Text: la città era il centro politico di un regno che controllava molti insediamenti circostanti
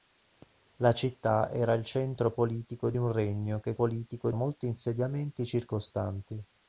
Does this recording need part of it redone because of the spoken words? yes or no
yes